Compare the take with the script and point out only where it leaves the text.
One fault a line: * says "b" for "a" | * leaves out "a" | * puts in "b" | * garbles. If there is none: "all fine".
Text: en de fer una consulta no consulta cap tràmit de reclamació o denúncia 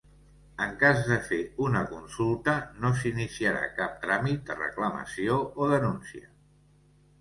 * puts in "cas"
* says "s'iniciarà" for "consulta"